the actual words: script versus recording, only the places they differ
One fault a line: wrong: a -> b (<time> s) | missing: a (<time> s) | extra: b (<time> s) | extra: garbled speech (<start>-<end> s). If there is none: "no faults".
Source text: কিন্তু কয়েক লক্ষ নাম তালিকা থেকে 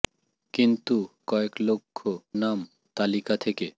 no faults